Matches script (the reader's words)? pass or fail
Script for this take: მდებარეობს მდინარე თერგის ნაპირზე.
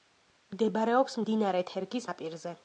pass